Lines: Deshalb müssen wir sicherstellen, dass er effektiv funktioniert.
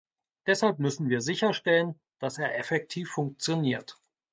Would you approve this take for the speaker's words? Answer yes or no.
yes